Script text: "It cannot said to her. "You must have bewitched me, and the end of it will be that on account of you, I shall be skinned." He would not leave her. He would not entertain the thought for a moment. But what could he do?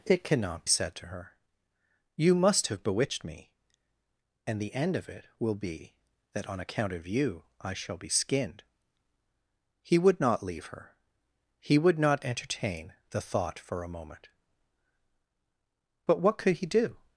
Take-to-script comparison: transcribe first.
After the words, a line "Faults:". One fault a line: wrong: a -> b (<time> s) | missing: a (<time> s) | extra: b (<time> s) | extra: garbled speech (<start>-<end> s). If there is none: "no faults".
"It cannot said to her. "You must have bewitched me, and the end of it will be that on account of you, I shall be skinned." He would not leave her. He would not entertain the thought for a moment. But what could he do?
Faults:
no faults